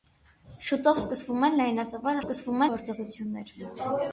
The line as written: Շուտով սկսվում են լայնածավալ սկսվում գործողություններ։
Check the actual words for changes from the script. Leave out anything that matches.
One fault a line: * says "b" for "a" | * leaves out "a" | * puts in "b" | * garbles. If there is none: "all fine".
all fine